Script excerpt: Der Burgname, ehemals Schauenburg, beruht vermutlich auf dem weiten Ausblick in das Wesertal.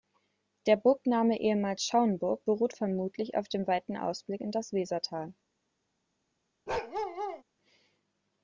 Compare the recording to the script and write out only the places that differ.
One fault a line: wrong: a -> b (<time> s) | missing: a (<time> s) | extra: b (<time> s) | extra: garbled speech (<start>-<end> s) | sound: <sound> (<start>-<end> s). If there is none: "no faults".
sound: bark (6.7-7.4 s)